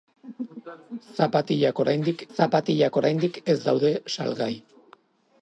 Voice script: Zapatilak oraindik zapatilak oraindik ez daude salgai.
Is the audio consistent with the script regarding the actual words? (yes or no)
yes